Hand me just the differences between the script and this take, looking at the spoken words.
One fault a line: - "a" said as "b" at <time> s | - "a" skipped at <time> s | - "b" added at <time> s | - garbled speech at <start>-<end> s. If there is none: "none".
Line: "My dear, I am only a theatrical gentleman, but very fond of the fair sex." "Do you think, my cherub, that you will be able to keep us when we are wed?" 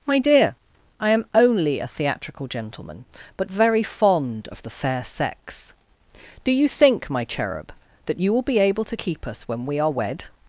none